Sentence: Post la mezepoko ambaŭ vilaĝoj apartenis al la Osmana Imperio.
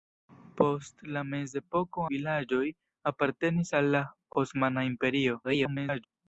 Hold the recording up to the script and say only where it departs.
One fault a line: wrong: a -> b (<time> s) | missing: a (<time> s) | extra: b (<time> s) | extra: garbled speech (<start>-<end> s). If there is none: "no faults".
missing: ambaŭ (2.0 s)
extra: garbled speech (5.4-6.1 s)